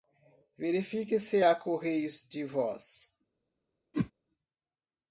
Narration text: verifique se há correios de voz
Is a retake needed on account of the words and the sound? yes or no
yes